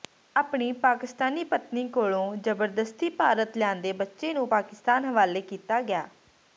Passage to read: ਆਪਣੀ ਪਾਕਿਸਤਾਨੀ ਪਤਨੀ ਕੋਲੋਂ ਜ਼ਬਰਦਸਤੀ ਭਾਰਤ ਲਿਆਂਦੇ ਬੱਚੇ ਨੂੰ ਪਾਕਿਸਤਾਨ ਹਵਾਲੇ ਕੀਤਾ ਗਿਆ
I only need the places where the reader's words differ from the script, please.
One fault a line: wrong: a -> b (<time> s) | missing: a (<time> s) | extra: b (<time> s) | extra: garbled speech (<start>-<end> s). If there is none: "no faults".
no faults